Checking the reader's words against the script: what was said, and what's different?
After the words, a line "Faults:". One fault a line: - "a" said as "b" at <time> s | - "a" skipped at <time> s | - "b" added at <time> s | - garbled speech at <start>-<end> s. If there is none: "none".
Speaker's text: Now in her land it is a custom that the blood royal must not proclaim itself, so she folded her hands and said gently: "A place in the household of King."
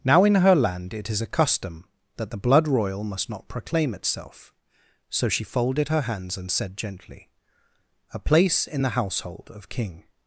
Now in her land it is a custom that the blood royal must not proclaim itself, so she folded her hands and said gently: "A place in the household of King."
Faults:
none